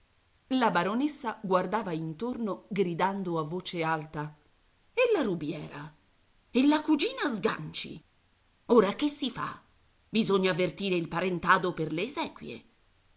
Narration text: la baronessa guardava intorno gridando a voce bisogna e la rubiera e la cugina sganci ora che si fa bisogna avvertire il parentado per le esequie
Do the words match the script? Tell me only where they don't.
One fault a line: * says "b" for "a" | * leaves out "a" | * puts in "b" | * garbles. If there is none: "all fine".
* says "alta" for "bisogna"